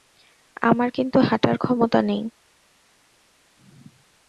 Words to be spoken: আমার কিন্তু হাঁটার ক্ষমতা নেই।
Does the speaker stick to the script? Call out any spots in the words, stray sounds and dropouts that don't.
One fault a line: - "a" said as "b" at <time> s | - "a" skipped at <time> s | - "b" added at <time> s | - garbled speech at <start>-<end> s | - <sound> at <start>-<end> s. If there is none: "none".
none